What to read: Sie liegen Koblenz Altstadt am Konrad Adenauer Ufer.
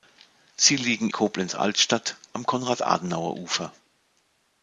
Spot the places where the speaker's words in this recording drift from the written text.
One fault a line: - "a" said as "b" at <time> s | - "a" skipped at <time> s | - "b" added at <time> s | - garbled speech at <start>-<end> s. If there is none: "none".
none